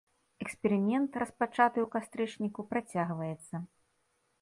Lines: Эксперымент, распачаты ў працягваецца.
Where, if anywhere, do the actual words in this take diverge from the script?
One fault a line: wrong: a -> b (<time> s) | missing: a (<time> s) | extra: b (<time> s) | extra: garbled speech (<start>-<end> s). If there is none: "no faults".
extra: кастрычніку (2.0 s)